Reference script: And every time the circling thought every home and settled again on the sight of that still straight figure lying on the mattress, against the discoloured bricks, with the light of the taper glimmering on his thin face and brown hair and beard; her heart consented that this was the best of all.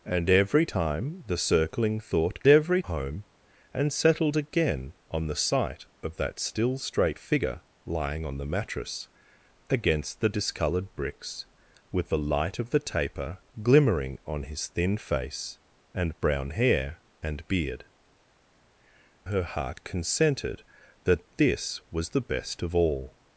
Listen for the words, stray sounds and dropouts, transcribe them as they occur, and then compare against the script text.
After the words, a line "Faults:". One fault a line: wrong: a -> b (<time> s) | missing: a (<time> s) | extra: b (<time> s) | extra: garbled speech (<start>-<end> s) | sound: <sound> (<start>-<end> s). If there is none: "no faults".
And every time the circling thought every home and settled again on the sight of that still straight figure lying on the mattress, against the discoloured bricks, with the light of the taper glimmering on his thin face and brown hair and beard; her heart consented that this was the best of all.
Faults:
no faults